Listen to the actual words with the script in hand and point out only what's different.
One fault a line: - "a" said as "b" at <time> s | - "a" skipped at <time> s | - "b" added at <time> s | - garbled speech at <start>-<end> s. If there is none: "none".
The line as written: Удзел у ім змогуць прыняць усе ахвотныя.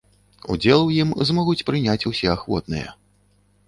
none